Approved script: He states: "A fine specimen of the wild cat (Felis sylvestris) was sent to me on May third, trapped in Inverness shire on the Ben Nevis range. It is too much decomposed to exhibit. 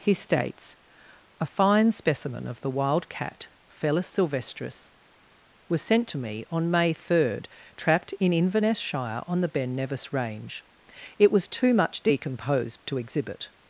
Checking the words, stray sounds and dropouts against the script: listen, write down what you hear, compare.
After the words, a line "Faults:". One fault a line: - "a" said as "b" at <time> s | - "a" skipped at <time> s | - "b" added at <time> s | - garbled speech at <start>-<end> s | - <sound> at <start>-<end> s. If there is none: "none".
He states: "A fine specimen of the wild cat (Felis sylvestris) was sent to me on May third, trapped in Inverness shire on the Ben Nevis range. It was too much decomposed to exhibit.
Faults:
- "is" said as "was" at 11.3 s